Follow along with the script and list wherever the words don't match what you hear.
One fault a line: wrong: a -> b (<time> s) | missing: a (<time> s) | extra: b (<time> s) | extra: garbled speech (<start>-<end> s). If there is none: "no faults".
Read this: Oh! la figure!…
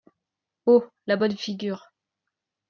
extra: bonne (1.2 s)